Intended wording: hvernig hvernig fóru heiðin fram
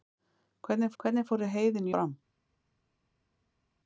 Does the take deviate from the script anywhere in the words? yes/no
no